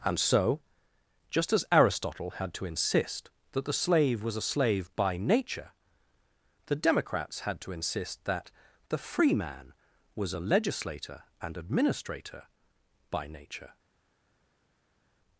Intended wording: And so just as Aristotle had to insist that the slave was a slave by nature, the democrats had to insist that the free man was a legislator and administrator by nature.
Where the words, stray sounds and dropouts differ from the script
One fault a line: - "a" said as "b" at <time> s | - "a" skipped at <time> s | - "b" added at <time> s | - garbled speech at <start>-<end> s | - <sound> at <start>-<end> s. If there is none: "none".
none